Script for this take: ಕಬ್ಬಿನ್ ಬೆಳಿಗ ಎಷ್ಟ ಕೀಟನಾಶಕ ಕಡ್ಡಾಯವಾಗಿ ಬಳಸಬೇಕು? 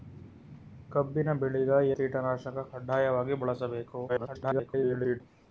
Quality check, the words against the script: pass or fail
fail